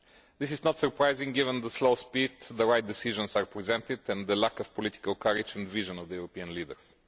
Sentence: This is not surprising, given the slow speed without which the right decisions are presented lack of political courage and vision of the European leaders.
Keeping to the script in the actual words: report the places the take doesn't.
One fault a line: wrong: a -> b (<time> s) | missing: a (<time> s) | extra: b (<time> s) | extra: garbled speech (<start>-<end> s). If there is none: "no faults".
wrong: without -> with (2.3 s)
extra: and the (4.1 s)